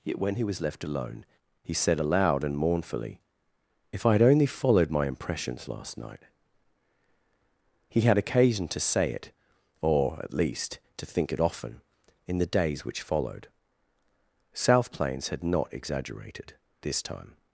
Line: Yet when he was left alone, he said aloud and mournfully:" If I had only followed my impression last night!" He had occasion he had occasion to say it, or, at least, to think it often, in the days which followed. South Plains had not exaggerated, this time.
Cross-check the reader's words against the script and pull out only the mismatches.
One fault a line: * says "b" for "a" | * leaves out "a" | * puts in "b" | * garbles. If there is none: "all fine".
* says "impressions" for "impression"
* leaves out "he had occasion"